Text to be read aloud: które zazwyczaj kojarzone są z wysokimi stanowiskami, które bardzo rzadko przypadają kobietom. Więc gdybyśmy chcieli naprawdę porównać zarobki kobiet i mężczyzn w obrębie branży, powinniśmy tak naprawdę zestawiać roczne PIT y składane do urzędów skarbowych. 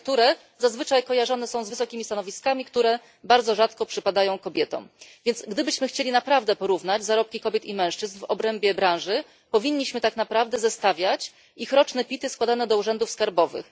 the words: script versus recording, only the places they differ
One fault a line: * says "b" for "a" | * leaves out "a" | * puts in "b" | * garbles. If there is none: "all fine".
* puts in "ich"